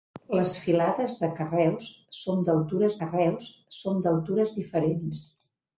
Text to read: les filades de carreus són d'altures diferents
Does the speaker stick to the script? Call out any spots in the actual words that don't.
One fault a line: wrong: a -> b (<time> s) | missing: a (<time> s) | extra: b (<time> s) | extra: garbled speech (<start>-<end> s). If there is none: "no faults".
extra: carreus són d'altures (3.0 s)